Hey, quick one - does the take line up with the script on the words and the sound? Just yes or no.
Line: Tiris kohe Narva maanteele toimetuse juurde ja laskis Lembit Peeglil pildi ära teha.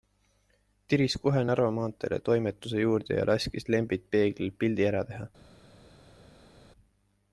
yes